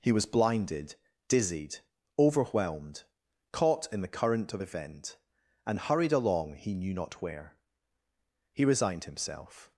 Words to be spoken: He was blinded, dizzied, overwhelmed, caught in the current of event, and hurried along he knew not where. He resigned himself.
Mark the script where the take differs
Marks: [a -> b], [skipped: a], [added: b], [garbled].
He was blinded, dizzied, overwhelmed, caught in the current of event, and hurried along he knew not where. He resigned himself.